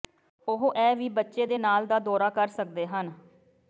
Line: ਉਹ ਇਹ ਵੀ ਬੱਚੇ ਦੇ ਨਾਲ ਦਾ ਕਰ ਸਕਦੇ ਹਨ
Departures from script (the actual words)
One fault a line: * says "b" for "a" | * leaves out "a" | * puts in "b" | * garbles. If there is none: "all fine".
* puts in "ਦੌਰਾ"